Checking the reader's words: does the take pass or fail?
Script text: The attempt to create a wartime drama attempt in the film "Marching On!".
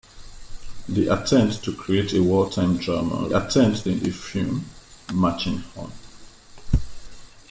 pass